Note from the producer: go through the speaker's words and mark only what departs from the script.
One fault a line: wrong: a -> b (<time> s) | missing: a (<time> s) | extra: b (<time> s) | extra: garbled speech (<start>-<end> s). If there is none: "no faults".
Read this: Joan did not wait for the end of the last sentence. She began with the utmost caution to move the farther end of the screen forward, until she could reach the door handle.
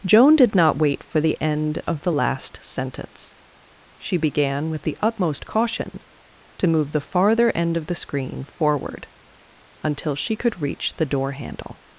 no faults